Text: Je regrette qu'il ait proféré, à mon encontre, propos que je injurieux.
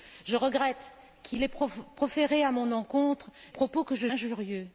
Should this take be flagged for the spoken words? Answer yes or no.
no